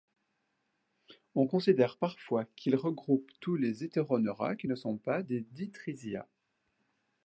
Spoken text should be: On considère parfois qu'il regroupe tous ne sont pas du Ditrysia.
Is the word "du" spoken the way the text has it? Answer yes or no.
no